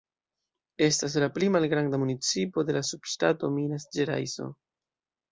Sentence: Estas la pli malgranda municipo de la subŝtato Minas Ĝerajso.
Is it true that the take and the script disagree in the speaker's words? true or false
false